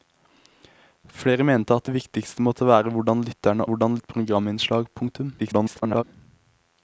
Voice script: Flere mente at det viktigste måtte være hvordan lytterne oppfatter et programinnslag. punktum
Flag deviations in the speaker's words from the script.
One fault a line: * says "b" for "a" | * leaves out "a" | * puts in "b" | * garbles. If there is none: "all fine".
* says "hvordan" for "oppfatter"
* garbles